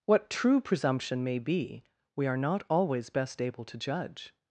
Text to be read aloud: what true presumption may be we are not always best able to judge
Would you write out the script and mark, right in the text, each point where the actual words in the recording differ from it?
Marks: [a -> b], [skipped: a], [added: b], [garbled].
what true presumption may be we are not always best able to judge